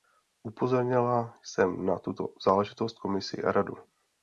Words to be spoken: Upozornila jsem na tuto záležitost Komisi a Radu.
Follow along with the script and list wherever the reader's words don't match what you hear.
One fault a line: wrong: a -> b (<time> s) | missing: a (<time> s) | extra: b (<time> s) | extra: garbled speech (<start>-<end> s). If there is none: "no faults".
no faults